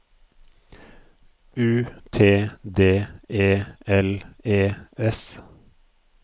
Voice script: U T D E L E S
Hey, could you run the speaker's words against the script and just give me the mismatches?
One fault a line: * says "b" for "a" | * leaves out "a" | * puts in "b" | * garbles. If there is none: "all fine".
all fine